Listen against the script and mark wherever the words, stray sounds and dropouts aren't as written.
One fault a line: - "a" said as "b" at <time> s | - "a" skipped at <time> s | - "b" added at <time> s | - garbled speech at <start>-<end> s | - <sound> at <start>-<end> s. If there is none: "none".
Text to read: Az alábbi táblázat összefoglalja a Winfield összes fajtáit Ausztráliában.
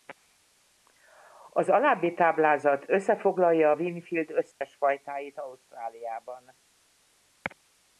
- dropout at 4.5-4.6 s